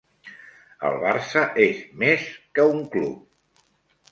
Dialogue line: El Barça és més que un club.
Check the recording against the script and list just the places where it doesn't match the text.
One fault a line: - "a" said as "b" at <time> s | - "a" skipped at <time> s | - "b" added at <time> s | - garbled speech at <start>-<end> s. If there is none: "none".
none